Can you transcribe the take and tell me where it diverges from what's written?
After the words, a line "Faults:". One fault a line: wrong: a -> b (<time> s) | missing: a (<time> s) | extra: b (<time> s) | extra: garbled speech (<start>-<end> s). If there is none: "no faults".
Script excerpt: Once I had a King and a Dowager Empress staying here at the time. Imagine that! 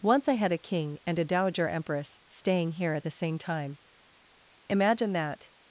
Once I had a King and a Dowager Empress staying here at the same time. Imagine that!
Faults:
extra: same (3.1 s)